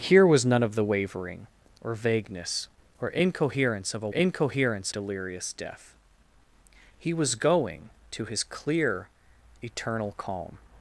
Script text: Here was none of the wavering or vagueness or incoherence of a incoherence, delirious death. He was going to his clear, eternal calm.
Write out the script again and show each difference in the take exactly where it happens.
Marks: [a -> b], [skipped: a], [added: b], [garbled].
Here was none of the wavering or vagueness or incoherence of a incoherence, delirious death. He was going to his clear, eternal calm.